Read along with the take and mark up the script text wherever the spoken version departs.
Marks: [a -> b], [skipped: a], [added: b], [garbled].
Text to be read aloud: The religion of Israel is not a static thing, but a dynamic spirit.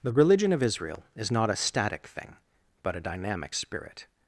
The religion of Israel is not a static thing, but a dynamic spirit.